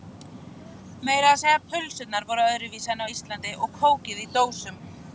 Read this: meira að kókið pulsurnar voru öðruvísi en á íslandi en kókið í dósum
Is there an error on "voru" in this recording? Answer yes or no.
no